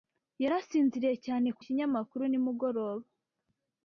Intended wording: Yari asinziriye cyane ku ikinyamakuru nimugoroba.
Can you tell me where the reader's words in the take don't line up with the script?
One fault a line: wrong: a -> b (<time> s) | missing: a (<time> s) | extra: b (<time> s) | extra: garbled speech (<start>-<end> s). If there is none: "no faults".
no faults